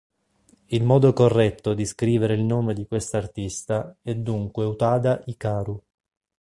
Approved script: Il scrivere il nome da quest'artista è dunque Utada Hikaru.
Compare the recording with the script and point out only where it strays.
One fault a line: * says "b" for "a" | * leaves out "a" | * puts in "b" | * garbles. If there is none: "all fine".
* puts in "modo corretto di"
* says "di" for "da"